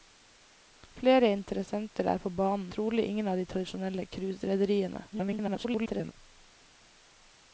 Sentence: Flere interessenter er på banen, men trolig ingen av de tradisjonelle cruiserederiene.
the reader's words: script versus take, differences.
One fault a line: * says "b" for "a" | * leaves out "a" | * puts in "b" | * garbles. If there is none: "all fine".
* leaves out "men"
* garbles